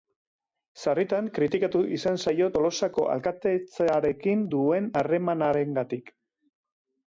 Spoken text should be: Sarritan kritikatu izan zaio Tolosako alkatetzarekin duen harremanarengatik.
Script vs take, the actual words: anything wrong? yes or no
no